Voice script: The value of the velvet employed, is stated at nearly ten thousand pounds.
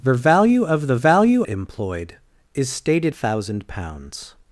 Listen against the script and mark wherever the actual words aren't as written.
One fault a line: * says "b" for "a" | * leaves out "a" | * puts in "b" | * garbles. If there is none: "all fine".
* says "value" for "velvet"
* leaves out "at nearly ten"